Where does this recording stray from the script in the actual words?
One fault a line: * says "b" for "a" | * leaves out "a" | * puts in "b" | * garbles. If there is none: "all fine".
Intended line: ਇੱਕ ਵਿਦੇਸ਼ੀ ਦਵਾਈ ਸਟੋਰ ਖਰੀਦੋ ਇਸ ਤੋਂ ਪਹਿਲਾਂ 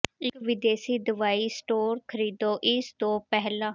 all fine